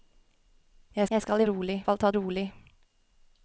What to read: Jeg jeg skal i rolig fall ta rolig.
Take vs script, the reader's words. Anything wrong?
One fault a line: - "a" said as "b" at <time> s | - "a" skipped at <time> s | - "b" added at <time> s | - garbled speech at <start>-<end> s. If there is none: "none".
none